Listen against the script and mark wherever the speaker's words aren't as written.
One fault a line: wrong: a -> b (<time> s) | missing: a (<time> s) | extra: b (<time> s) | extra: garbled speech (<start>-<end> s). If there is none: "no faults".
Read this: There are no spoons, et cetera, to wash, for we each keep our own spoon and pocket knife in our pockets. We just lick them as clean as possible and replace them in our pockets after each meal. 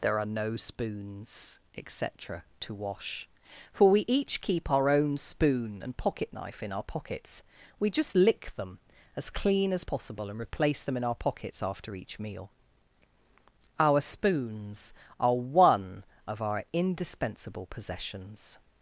extra: Our spoons are one of our indispensable possessions (13.8 s)